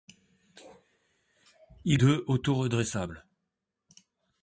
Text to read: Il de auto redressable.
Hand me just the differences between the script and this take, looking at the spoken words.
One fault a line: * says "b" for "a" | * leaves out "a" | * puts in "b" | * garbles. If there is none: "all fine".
all fine